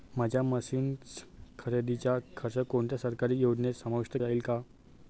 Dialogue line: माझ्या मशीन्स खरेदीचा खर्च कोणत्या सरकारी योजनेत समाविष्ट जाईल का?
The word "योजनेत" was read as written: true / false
true